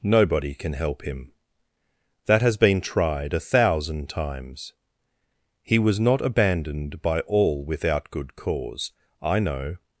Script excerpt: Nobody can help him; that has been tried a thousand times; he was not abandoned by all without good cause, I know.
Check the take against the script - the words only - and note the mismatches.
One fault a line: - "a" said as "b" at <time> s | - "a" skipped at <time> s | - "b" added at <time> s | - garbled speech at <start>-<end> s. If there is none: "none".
none